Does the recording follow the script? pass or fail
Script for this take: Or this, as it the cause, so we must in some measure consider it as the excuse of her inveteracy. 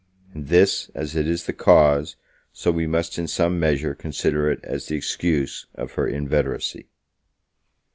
fail